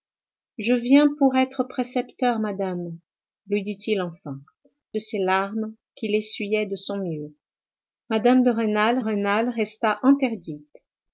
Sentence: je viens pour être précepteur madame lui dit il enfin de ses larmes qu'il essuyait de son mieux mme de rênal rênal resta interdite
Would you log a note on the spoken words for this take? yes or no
no